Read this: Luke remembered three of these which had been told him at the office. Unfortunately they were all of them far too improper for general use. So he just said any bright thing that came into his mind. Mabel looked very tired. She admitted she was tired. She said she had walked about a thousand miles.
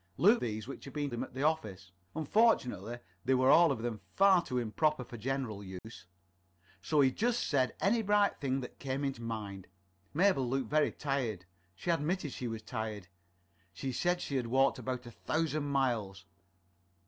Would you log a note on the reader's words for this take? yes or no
yes